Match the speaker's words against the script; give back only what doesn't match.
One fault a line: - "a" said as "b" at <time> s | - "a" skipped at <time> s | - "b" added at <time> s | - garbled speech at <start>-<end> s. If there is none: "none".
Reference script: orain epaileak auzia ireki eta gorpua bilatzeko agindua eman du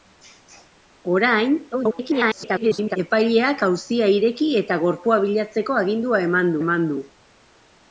- garbled speech at 1.7-3.0 s
- "eman" added at 6.6 s